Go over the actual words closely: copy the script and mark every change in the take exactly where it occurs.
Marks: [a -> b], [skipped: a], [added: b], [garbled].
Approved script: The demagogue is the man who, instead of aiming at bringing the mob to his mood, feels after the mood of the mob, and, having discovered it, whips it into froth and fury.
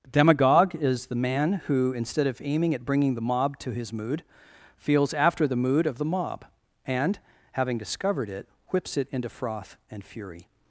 [skipped: The] demagogue is the man who, instead of aiming at bringing the mob to his mood, feels after the mood of the mob, and, having discovered it, whips it into froth and fury.